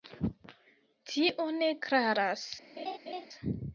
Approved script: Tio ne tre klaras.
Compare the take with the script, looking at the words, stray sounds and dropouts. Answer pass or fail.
fail